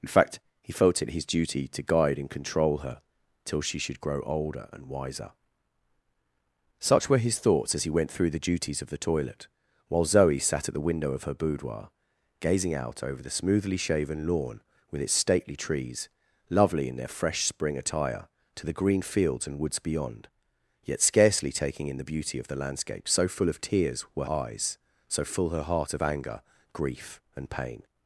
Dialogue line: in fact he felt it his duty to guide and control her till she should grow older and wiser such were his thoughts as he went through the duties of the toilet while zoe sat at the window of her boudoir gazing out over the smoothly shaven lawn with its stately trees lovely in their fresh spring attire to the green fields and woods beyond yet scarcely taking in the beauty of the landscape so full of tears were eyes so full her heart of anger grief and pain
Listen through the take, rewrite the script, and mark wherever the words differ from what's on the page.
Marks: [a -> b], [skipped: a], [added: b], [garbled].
in fact he felt it his duty to guide and control her till she should grow older and wiser such were his thoughts as he went through the duties of the toilet while zoe sat at the window of her boudoir gazing out over the smoothly shaven lawn with its stately trees lovely in their fresh spring attire to the green fields and woods beyond yet scarcely taking in the beauty of the landscape so full of tears were eyes so full her heart of anger grief and pain